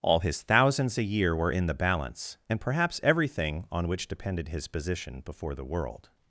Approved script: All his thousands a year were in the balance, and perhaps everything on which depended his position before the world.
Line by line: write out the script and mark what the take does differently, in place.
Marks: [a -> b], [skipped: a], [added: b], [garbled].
All his thousands a year were in the balance, and perhaps everything on which depended his position before the world.